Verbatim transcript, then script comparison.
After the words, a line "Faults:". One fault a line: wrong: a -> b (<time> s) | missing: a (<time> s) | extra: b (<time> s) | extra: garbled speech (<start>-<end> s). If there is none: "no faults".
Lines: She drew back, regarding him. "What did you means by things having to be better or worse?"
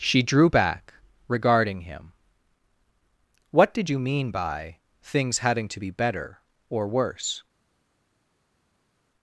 She drew back, regarding him. "What did you mean by things having to be better or worse?"
Faults:
wrong: means -> mean (4.0 s)